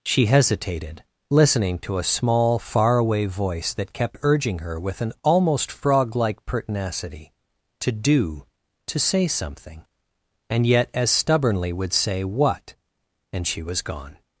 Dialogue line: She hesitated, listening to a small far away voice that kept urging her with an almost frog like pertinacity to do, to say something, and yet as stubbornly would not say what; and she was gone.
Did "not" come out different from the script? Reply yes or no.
yes